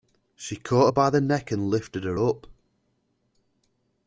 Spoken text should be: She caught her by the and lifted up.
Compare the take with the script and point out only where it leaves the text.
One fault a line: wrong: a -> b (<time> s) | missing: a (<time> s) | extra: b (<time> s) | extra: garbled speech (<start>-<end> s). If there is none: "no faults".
extra: neck (1.2 s)
extra: her (2.0 s)